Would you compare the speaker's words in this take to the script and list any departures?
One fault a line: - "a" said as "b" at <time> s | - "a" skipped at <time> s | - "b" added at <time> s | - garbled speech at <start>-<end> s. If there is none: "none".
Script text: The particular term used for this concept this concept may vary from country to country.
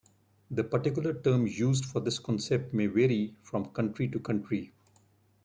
- "this concept" skipped at 2.7 s